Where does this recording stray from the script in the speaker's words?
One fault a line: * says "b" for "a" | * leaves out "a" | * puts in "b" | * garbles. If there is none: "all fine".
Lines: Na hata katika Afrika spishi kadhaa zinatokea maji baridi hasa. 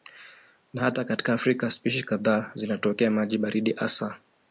all fine